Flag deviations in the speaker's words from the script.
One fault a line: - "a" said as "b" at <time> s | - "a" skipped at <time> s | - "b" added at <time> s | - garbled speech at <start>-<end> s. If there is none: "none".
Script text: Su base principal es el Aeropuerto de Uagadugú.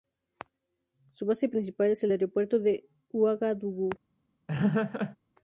none